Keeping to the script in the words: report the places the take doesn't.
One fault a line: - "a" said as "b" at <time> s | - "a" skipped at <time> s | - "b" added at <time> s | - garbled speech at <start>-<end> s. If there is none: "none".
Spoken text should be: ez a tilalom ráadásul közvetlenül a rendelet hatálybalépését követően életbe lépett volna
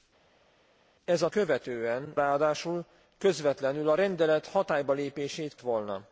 - "tilalom" said as "követően" at 1.3 s
- "követően életbe lépett" skipped at 5.6 s